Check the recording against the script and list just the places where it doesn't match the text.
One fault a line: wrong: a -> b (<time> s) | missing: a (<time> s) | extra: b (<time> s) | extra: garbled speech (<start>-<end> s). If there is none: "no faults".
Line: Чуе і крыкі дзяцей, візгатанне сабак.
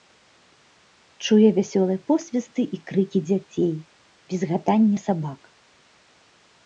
extra: вясёлыя посвісты (1.6 s)